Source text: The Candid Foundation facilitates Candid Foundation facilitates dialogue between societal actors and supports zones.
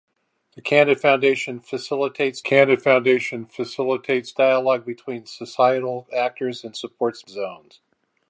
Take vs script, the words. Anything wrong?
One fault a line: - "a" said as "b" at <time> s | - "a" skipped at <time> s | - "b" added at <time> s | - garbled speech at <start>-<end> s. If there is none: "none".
none